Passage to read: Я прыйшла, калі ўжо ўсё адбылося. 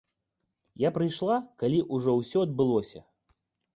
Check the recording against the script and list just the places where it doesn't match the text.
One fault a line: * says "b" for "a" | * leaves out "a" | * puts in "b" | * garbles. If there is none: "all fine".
all fine